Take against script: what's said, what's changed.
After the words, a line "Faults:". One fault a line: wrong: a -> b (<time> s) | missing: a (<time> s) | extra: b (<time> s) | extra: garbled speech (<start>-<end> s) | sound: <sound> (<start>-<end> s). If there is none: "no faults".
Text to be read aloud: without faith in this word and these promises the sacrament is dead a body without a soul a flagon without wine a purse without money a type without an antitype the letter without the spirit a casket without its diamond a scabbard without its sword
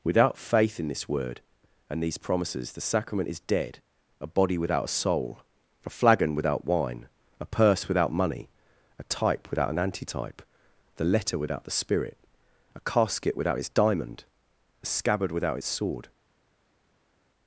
without faith in this word and these promises the sacrament is dead a body without a soul a flagon without wine a purse without money a type without an antitype the letter without the spirit a casket without its diamond a scabbard without its sword
Faults:
no faults